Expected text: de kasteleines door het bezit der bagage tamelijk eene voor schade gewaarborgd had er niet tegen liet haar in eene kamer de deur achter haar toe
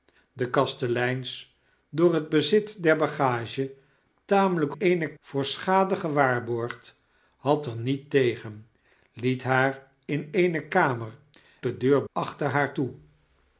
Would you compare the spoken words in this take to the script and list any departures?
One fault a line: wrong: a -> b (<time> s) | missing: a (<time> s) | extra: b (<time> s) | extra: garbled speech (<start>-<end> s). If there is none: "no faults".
no faults